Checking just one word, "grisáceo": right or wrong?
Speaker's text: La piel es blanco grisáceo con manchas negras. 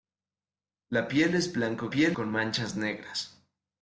wrong